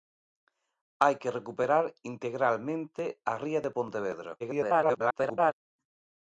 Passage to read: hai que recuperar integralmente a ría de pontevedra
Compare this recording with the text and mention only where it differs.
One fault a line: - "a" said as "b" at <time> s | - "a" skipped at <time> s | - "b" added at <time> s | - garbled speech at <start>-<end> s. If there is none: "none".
- garbled speech at 4.4-5.5 s